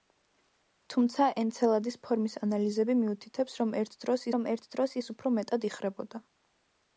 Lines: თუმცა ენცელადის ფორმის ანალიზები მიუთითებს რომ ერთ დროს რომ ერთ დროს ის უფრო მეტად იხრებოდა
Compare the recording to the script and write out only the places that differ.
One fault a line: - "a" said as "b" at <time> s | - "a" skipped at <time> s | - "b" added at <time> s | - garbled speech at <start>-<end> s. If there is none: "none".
none